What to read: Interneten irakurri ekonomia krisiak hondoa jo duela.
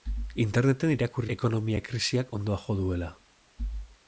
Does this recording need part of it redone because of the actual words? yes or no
no